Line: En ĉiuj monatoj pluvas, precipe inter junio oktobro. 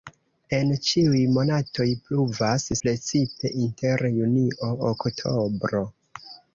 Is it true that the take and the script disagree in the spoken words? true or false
false